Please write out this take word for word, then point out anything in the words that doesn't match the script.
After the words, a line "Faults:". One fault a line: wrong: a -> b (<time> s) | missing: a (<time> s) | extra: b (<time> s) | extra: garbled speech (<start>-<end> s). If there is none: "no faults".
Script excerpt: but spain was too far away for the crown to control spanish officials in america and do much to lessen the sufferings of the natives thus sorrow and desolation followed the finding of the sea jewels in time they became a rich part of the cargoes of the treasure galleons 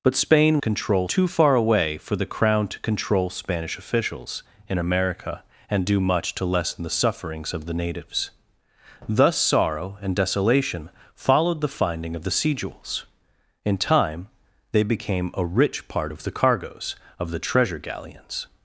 but spain control too far away for the crown to control spanish officials in america and do much to lessen the sufferings of the natives thus sorrow and desolation followed the finding of the sea jewels in time they became a rich part of the cargoes of the treasure galleons
Faults:
wrong: was -> control (0.6 s)